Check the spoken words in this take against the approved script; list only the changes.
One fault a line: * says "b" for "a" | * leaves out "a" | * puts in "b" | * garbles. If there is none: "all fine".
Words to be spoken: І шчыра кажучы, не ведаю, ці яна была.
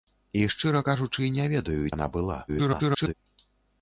* leaves out "ці"
* garbles